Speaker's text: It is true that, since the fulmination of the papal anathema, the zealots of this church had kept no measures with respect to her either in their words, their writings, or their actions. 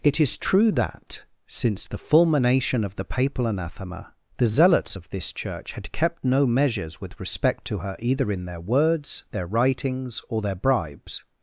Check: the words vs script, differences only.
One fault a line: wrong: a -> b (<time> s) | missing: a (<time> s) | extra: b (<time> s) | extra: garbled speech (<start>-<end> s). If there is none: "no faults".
wrong: actions -> bribes (10.5 s)